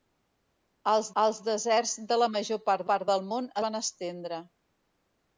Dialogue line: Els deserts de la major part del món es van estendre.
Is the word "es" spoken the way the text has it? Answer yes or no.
no